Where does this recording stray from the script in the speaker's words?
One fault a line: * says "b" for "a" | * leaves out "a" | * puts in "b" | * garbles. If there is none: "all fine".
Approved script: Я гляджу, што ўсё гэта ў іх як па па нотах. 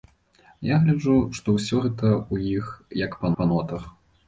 all fine